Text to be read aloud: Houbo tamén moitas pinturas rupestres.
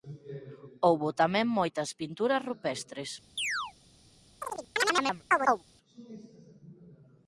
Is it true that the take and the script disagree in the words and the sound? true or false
true